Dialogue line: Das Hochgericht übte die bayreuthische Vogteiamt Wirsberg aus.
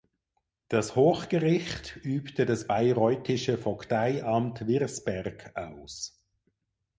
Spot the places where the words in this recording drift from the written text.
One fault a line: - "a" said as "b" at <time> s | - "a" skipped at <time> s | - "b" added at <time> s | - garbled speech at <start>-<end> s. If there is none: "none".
- "die" said as "das" at 2.5 s